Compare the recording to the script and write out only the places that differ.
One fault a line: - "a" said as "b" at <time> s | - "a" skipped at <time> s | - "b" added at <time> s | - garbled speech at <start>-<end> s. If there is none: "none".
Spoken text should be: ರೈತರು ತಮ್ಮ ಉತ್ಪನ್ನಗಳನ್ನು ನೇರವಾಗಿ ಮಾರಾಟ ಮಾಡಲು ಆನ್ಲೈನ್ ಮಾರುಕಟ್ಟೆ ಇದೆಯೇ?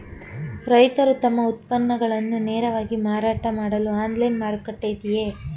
none